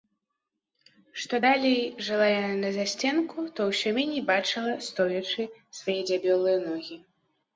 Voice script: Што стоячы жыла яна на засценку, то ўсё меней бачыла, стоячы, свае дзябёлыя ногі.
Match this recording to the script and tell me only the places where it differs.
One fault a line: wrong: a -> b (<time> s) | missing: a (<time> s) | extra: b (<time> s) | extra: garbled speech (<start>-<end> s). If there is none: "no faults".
wrong: стоячы -> далей (1.4 s)